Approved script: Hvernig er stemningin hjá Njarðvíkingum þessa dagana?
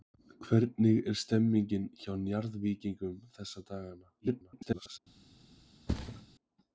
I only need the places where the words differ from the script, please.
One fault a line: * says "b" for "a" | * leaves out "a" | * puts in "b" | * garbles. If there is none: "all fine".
* garbles